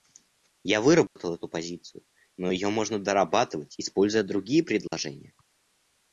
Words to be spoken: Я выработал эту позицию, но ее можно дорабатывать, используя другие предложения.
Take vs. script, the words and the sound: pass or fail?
fail